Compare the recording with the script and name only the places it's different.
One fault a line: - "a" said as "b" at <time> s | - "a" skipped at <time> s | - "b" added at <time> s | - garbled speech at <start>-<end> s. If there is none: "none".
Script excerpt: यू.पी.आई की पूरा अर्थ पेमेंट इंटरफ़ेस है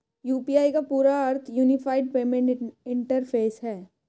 - "की" said as "का" at 0.7 s
- "यूनिफाइड" added at 1.5 s